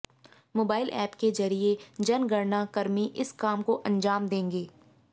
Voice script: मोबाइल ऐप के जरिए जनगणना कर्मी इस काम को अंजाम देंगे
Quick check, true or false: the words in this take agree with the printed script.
true